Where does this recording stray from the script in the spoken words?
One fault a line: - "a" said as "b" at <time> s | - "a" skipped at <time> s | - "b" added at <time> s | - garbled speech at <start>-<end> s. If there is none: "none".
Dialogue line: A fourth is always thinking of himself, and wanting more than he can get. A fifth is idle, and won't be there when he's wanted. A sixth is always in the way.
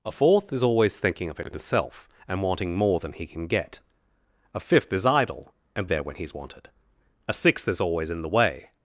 - "won't be" skipped at 5.9 s